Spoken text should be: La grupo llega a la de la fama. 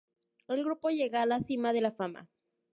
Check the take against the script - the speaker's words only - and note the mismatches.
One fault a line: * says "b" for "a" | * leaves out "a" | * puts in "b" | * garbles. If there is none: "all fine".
* says "El" for "La"
* puts in "cima"